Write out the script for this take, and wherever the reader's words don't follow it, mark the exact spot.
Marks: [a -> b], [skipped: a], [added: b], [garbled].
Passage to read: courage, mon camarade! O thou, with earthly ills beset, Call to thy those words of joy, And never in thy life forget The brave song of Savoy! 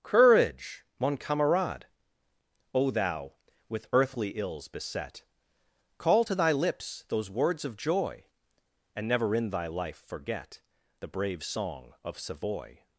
courage, mon camarade! O thou, with earthly ills beset, Call to thy [added: lips] those words of joy, And never in thy life forget The brave song of Savoy!